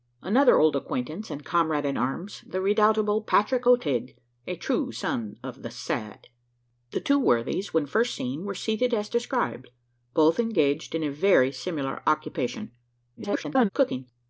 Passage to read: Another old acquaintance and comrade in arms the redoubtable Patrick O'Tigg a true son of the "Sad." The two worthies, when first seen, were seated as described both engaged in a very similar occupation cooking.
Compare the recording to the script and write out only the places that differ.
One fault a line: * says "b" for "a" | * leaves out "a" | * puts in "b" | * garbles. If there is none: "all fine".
* garbles